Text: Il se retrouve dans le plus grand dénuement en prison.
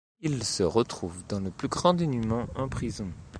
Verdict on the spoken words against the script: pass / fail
pass